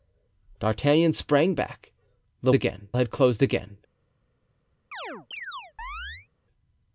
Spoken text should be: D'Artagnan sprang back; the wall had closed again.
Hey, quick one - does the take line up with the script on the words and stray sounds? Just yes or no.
no